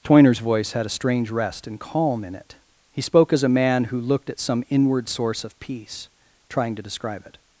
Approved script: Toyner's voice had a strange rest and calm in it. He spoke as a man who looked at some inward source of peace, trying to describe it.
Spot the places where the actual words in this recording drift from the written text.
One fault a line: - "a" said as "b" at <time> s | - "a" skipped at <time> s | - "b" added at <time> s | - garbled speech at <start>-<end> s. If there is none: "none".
none